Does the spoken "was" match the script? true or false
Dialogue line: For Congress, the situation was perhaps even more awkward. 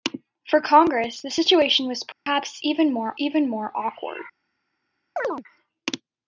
true